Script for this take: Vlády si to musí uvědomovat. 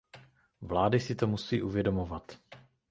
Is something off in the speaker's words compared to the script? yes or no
no